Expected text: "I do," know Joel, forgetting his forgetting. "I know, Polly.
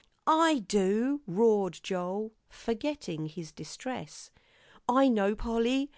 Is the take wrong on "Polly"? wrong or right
right